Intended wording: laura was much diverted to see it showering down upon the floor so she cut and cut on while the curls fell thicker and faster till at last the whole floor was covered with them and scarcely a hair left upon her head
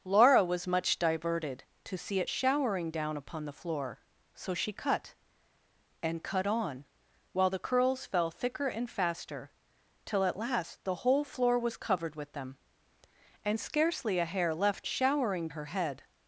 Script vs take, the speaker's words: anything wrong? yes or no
yes